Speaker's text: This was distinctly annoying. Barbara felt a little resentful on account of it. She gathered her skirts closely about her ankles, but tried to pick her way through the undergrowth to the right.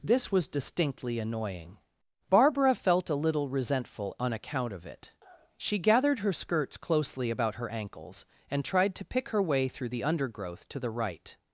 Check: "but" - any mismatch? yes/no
yes